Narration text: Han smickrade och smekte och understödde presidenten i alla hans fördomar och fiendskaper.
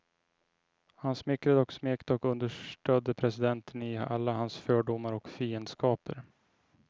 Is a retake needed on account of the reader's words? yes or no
no